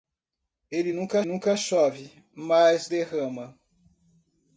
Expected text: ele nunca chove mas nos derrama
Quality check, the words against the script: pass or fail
fail